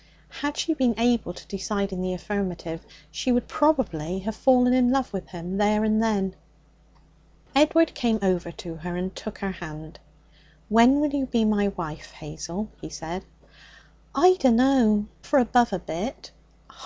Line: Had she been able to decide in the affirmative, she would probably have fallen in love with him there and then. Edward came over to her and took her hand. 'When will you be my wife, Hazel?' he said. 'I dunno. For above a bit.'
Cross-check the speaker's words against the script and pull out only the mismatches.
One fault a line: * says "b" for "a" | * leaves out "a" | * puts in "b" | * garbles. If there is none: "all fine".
all fine